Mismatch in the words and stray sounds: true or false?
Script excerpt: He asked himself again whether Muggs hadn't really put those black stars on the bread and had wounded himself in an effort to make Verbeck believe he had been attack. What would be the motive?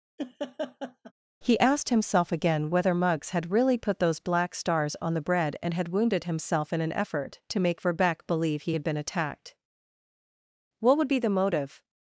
true